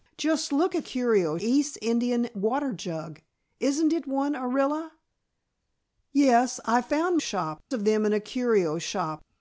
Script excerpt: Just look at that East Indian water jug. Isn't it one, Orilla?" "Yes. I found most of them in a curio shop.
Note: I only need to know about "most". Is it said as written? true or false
false